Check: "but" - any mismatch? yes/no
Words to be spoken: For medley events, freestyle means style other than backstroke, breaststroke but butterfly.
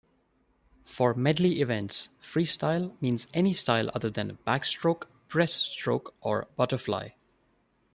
yes